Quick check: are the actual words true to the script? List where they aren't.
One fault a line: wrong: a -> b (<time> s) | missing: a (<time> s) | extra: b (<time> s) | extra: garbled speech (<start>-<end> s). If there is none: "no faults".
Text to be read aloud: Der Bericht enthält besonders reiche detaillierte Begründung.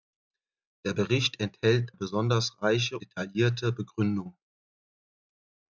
no faults